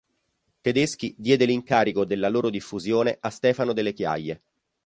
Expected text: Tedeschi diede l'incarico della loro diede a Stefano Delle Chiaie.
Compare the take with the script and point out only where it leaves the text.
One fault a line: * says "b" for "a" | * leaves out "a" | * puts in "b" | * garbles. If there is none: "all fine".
* says "diffusione" for "diede"